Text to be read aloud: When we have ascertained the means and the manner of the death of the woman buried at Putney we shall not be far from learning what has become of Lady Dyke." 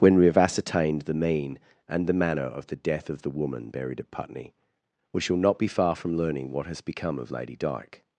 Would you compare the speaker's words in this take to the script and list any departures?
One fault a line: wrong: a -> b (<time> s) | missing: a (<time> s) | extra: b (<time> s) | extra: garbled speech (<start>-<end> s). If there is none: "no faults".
wrong: means -> mean (1.1 s)